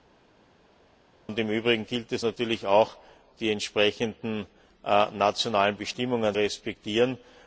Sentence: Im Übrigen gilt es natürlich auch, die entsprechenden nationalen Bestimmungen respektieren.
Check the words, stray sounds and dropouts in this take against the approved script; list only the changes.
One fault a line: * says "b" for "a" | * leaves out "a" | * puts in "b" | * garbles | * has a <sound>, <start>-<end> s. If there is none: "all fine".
all fine